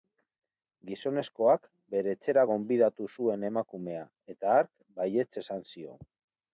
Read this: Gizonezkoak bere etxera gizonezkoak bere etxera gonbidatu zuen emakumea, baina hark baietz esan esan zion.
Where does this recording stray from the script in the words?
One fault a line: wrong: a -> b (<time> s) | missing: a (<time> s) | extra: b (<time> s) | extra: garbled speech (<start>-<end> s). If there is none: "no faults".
missing: gizonezkoak bere etxera (2.5 s)
wrong: baina -> eta (4.4 s)
missing: esan (5.7 s)